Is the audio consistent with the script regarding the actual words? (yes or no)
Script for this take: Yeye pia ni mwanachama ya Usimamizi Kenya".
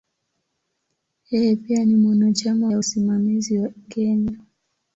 yes